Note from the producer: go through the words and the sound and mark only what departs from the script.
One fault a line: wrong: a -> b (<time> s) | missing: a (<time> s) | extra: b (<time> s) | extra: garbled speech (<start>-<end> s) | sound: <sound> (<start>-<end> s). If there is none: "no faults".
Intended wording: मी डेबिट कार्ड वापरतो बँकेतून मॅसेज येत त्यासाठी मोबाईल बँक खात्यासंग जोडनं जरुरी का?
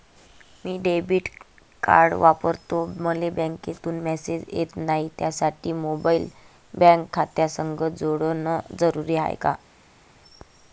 extra: मले (3.0 s)
extra: नाही (4.8 s)
extra: हाय (9.2 s)